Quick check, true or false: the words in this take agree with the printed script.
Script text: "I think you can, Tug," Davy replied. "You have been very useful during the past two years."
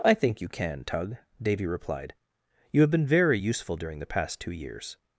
true